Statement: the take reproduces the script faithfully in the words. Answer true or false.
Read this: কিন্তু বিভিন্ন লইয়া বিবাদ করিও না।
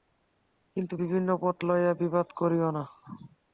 false